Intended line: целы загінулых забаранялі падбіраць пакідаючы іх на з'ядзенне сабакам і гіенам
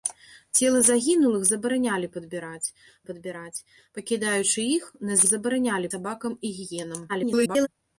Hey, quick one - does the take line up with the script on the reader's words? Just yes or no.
no